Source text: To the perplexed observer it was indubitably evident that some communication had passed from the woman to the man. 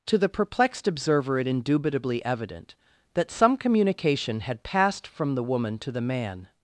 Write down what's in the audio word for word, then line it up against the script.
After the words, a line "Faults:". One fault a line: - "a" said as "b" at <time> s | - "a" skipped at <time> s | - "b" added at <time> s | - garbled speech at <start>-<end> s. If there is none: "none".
To the perplexed observer it indubitably evident that some communication had passed from the woman to the man.
Faults:
- "was" skipped at 1.5 s